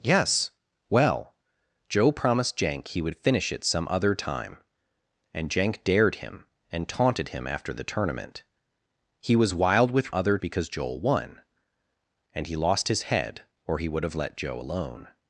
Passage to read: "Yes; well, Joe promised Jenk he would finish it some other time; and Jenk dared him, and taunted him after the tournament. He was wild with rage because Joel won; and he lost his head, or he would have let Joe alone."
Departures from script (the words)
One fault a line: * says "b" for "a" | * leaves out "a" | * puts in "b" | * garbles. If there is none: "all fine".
* says "other" for "rage"